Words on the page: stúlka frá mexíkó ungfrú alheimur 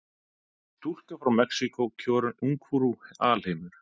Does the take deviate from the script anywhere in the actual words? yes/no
no